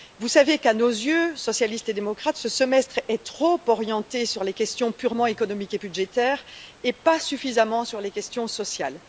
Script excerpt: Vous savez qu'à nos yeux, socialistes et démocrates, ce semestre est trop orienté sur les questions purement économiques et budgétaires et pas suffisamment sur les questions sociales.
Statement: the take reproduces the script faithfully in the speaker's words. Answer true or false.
true